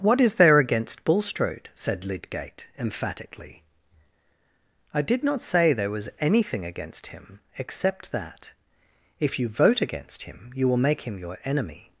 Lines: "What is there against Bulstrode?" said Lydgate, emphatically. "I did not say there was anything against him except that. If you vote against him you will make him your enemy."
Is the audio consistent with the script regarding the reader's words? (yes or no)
yes